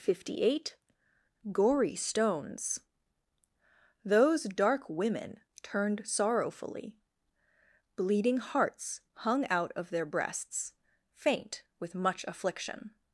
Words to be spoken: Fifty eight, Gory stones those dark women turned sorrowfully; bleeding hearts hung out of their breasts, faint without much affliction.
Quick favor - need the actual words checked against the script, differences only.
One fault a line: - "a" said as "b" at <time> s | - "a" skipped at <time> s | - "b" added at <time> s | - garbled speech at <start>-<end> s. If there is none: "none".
- "without" said as "with" at 11.8 s